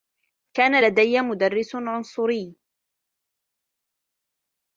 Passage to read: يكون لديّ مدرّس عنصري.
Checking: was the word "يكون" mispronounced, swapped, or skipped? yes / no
yes